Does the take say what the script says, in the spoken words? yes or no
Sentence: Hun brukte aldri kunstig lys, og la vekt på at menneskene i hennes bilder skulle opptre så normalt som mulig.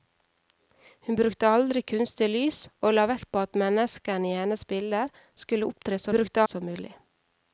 no